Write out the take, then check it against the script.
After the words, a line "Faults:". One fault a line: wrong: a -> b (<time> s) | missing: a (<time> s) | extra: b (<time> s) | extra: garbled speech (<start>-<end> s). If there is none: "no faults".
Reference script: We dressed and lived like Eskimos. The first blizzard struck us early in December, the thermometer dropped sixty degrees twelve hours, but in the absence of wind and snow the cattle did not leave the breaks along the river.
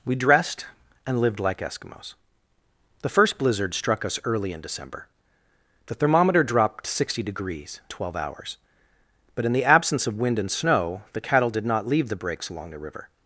We dressed and lived like Eskimos. The first blizzard struck us early in December, the thermometer dropped sixty degrees twelve hours, but in the absence of wind and snow the cattle did not leave the breaks along the river.
Faults:
no faults